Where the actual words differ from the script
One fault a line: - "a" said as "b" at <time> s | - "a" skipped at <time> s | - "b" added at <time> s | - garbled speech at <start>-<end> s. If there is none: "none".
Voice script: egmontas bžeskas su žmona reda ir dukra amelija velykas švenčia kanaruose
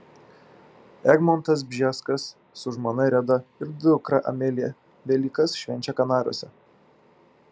none